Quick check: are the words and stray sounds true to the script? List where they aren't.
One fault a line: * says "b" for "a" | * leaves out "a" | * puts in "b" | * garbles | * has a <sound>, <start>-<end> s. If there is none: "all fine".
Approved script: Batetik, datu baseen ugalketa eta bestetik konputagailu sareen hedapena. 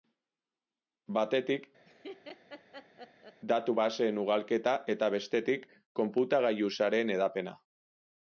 * has a laugh, 1.9-3.4 s